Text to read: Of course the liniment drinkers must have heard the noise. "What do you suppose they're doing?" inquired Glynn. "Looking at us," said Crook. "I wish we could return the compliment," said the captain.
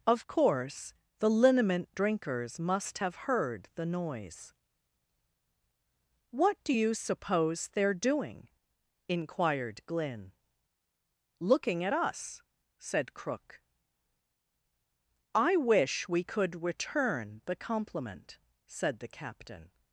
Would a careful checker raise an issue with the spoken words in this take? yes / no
no